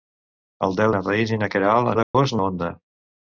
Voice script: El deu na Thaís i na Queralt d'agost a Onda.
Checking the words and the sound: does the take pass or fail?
fail